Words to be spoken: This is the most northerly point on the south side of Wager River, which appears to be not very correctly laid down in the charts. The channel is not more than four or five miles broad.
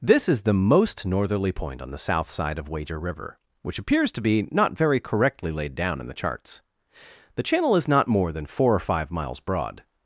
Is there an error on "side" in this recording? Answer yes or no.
no